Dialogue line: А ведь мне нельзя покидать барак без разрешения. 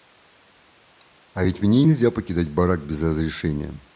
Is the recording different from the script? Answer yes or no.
no